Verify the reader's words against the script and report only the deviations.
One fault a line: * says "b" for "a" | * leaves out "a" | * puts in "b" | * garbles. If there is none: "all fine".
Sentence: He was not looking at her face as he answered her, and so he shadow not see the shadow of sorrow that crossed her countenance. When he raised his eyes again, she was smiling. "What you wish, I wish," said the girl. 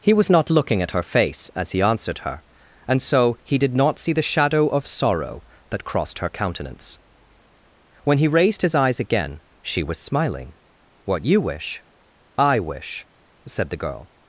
* says "did" for "shadow"